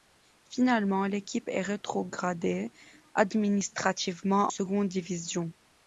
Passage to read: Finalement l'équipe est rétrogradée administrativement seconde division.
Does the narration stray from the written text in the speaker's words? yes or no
no